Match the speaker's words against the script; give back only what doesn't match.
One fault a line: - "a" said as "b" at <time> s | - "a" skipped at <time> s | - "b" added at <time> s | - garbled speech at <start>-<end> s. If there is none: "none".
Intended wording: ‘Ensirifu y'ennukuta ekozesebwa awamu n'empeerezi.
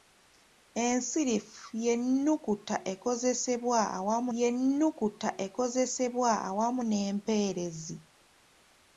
- "y'ennukuta ekozesebwa awamu" added at 4.4 s